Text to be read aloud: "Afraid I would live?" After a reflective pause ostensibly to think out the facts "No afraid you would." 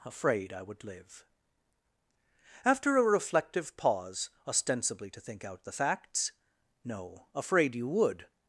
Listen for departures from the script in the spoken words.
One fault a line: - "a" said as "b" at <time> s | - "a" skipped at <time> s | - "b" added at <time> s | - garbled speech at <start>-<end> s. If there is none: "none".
none